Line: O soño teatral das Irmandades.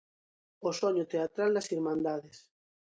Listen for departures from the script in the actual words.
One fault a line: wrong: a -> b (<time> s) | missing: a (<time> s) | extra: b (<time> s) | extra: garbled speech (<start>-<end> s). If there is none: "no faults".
no faults